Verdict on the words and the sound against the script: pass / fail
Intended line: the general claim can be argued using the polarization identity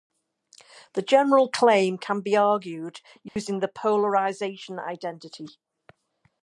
fail